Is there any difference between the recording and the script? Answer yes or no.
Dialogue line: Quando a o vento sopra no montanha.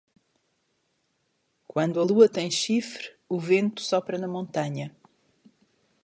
yes